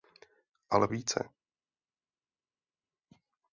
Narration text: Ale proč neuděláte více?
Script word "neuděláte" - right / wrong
wrong